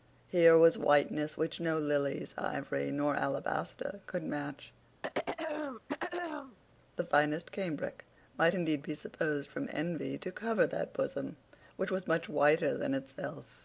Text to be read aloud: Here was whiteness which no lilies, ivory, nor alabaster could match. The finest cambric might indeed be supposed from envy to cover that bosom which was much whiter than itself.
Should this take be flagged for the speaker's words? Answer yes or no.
no